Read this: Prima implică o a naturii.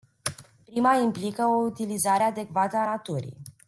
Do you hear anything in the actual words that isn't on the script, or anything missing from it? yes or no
yes